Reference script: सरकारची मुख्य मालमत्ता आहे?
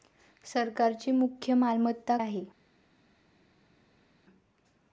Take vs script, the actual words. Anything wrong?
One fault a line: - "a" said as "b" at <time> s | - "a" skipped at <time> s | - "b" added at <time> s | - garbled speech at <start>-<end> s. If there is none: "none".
none